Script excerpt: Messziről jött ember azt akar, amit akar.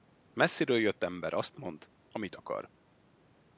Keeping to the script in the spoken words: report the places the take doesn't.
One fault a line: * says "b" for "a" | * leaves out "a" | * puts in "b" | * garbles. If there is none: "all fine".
* says "mond" for "akar"